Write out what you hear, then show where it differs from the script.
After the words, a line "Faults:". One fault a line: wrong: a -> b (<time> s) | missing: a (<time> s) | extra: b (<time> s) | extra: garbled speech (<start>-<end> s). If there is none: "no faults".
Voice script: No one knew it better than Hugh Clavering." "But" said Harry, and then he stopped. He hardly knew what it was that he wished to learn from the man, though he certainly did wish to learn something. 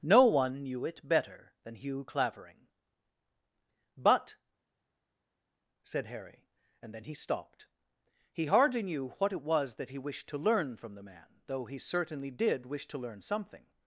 No one knew it better than Hugh Clavering." "But" said Harry, and then he stopped. He hardly knew what it was that he wished to learn from the man, though he certainly did wish to learn something.
Faults:
no faults